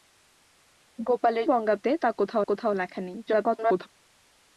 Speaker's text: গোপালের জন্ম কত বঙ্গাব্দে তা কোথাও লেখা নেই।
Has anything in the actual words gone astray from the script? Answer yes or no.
yes